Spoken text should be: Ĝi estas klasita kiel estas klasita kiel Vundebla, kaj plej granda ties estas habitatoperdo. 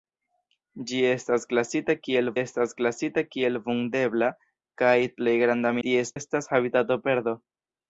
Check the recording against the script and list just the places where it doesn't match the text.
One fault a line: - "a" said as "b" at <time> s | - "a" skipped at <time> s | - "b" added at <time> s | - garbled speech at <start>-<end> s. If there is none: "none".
none